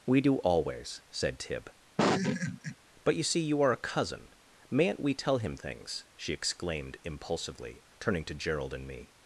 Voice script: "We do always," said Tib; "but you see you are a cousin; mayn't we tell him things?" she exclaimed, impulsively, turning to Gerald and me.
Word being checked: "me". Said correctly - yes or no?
yes